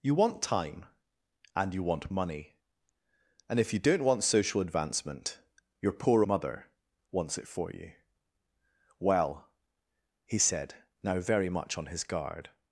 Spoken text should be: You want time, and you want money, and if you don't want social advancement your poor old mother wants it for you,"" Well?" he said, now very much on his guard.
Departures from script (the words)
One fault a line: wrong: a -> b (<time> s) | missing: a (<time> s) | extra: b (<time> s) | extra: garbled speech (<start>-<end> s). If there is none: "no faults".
missing: old (6.2 s)